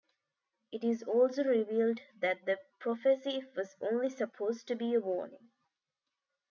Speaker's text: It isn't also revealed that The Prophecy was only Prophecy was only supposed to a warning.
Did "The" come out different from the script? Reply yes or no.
no